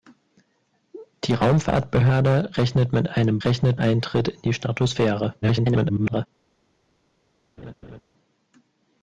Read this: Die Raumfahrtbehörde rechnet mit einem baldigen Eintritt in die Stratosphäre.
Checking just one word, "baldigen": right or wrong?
wrong